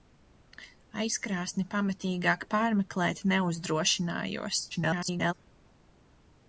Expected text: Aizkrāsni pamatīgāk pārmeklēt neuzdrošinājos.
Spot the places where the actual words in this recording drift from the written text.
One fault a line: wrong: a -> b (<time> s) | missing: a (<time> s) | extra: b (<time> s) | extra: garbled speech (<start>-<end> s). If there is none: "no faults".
extra: garbled speech (4.7-5.3 s)